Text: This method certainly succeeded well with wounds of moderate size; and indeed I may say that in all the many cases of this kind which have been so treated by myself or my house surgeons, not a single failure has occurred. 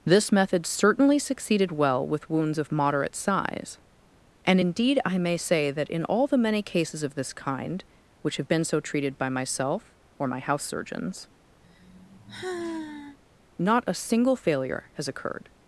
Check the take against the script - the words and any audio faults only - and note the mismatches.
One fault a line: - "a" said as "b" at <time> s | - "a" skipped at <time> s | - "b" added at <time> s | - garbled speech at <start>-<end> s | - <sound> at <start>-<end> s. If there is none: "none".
- sigh at 11.6-13.2 s